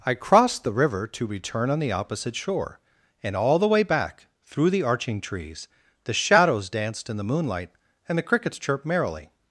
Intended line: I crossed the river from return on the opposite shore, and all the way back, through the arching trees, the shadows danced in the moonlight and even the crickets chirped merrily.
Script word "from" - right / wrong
wrong